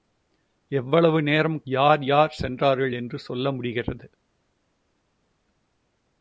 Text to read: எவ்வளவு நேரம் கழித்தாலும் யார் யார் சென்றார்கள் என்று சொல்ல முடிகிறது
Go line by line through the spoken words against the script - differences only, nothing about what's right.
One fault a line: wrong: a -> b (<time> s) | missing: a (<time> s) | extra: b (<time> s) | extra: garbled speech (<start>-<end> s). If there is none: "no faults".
missing: கழித்தாலும் (1.6 s)